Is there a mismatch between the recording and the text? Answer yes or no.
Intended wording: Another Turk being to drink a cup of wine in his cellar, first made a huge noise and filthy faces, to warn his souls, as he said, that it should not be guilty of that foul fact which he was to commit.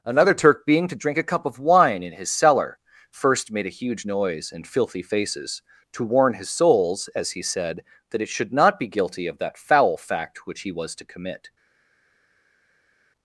no